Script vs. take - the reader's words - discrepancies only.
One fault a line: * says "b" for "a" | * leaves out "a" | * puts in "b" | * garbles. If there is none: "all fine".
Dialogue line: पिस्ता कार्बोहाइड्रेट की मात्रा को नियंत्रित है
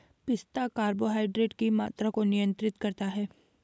* puts in "करता"